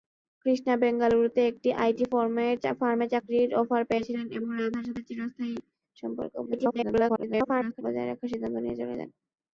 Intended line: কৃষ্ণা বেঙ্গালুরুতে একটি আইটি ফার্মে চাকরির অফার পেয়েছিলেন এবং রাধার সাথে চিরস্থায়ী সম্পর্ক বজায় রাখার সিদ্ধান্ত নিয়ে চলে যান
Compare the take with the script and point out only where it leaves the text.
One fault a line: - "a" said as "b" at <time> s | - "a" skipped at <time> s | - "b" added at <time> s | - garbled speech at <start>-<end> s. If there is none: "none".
- garbled speech at 6.5-7.8 s